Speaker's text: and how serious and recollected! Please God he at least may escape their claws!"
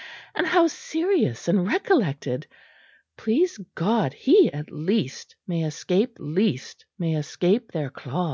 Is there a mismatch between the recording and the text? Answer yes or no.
yes